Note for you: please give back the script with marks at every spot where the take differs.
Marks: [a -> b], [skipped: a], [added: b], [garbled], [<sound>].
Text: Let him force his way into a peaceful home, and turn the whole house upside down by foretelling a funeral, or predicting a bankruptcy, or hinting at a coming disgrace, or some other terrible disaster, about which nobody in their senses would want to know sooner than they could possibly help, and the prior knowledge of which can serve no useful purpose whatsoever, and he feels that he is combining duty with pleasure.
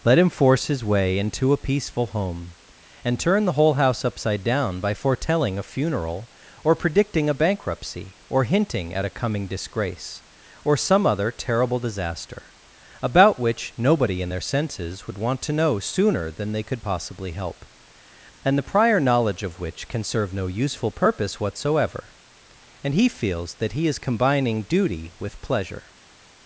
Let him force his way into a peaceful home, and turn the whole house upside down by foretelling a funeral, or predicting a bankruptcy, or hinting at a coming disgrace, or some other terrible disaster, about which nobody in their senses would want to know sooner than they could possibly help, and the prior knowledge of which can serve no useful purpose whatsoever, and he feels that he is combining duty with pleasure.